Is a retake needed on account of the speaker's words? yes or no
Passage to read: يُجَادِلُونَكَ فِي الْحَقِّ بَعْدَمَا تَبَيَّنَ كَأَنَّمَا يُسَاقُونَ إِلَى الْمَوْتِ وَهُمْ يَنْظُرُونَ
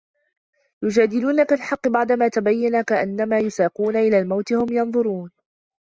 yes